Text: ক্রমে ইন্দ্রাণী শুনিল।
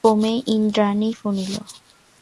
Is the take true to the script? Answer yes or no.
yes